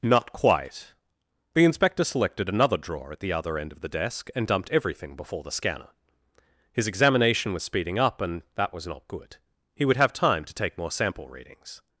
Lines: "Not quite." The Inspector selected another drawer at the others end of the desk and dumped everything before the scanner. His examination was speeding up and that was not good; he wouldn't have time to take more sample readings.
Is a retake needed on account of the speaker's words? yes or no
yes